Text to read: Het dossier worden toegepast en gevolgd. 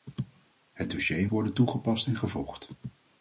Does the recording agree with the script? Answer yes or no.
yes